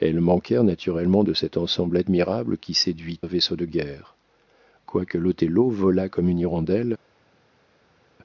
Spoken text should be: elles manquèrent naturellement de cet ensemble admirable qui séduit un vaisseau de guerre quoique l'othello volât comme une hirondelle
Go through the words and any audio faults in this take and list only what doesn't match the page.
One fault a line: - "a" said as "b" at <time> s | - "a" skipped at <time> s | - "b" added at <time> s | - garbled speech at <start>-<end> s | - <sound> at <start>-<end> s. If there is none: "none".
none